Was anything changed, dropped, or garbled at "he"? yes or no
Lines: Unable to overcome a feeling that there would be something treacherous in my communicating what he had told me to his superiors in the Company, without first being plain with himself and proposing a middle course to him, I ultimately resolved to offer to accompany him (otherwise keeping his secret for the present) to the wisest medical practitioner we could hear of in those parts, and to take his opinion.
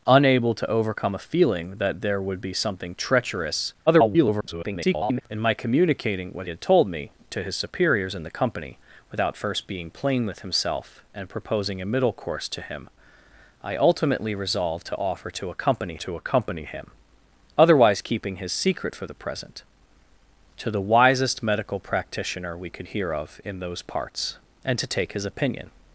yes